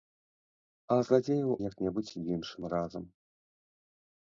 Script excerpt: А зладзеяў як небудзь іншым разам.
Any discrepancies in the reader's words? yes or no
no